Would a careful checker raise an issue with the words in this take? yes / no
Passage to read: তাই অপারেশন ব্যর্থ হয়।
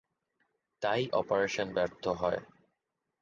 no